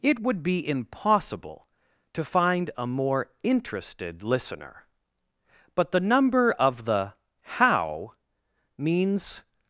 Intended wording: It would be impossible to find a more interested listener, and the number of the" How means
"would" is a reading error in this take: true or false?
false